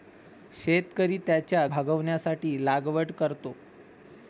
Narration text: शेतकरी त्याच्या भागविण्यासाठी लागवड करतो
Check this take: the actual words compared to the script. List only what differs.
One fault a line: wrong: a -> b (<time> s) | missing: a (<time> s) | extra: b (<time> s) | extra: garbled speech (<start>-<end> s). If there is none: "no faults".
no faults